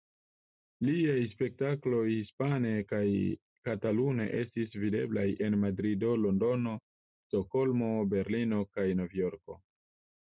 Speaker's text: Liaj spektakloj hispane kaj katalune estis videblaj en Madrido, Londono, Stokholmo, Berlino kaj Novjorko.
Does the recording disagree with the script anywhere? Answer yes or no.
no